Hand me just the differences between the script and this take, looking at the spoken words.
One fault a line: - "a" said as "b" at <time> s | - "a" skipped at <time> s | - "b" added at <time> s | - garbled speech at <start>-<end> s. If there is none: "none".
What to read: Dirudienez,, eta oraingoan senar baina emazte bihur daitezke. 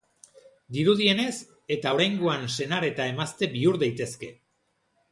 - "baina" said as "eta" at 2.9 s